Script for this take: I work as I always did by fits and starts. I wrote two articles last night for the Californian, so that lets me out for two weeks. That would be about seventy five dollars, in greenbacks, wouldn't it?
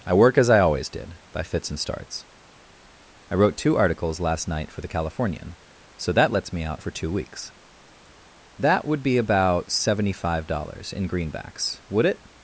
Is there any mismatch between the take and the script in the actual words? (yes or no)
yes